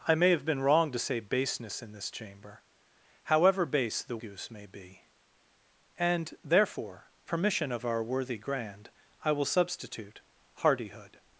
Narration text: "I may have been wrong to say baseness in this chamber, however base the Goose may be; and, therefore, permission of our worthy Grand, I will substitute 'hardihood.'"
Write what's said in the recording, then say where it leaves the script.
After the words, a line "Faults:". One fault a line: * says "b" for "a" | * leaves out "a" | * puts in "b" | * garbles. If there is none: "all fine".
"I may have been wrong to say baseness in this chamber, however base the Goose may be; and, therefore, permission of our worthy Grand, I will substitute 'hardihood.'"
Faults:
all fine